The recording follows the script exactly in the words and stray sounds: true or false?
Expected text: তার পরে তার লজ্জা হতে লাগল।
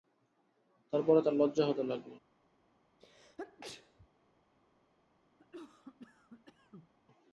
false